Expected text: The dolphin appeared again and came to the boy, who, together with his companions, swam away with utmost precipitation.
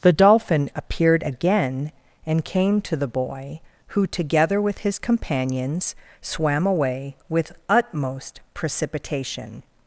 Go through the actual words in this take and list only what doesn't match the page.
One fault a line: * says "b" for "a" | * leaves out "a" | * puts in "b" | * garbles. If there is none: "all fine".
all fine